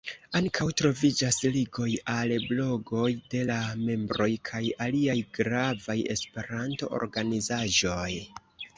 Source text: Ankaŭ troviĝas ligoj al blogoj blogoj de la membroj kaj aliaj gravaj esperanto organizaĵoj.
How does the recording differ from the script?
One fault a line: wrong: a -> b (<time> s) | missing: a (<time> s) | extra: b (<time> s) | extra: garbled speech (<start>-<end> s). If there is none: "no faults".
missing: blogoj (3.1 s)